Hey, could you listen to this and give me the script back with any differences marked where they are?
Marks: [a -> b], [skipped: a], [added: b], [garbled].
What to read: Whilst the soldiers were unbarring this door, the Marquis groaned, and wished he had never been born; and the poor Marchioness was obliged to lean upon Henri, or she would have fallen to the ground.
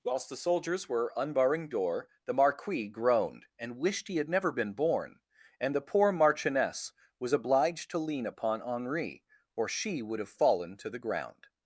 Whilst the soldiers were unbarring [skipped: this] door, the Marquis groaned, and wished he had never been born; and the poor Marchioness was obliged to lean upon Henri, or she would have fallen to the ground.